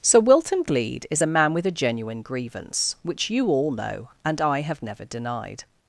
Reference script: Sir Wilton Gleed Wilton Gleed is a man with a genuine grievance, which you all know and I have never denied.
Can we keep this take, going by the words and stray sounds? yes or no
no